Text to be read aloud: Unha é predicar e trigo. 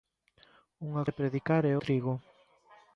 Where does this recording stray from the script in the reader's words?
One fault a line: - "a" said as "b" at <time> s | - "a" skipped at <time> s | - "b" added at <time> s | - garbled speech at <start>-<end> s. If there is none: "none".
none